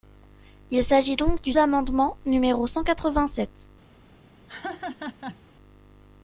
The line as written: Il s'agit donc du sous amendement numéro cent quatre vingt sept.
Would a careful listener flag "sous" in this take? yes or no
yes